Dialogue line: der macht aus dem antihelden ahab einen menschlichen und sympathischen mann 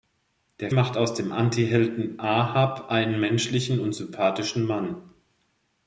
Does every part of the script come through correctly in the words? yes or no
yes